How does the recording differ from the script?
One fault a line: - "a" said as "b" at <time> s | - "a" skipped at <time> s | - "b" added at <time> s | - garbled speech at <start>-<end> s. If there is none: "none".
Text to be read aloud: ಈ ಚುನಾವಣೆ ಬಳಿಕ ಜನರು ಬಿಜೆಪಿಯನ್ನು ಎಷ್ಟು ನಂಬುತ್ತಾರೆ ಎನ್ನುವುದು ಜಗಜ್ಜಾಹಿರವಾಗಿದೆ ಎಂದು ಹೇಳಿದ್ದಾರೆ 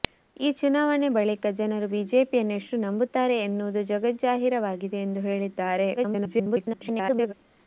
- garbled speech at 6.0-7.3 s